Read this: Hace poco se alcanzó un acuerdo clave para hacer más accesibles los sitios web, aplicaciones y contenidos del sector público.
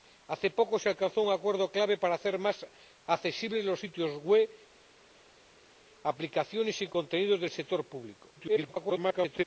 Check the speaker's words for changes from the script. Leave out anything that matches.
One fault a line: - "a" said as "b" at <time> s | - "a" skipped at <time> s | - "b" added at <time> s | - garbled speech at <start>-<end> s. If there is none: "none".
- garbled speech at 8.4-9.4 s